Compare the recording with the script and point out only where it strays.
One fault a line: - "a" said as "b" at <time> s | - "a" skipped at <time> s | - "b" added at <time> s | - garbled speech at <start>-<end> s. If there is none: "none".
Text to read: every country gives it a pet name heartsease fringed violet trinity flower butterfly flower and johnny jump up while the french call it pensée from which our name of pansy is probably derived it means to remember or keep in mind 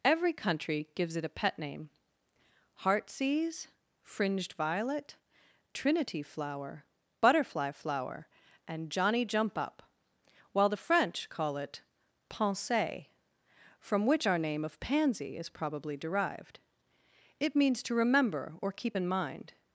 none